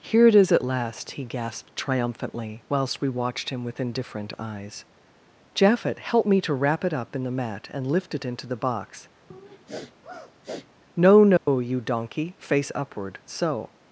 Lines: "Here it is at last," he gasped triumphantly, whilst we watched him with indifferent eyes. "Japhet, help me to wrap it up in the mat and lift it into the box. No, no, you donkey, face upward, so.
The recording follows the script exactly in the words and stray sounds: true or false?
false